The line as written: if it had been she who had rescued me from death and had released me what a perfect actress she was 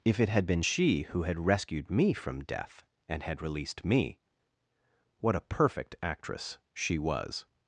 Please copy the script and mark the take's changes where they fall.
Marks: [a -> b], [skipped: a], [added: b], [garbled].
if it had been she who had rescued me from death and had released me what a perfect actress she was